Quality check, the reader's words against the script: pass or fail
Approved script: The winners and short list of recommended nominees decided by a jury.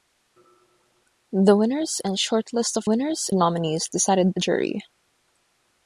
fail